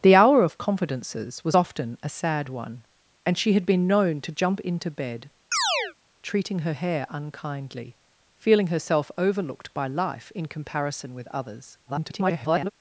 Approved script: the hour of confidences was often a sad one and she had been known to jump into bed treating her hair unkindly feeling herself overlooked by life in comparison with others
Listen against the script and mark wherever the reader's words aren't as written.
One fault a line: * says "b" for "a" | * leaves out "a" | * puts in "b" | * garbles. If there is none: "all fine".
* garbles